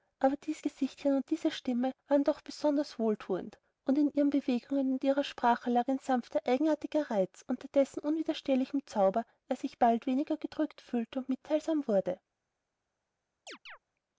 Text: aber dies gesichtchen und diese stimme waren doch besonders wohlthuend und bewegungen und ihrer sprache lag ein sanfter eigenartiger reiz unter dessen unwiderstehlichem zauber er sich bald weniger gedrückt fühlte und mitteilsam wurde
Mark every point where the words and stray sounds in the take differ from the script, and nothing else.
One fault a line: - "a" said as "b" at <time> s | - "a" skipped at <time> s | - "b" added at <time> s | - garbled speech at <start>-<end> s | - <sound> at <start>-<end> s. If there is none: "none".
- "in ihren" added at 4.0 s
- chirp at 13.5-13.8 s